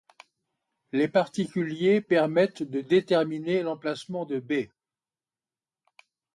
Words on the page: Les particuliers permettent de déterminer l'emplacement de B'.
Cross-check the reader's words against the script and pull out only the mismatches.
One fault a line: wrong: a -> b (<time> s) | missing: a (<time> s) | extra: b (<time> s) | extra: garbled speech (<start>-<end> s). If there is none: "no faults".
no faults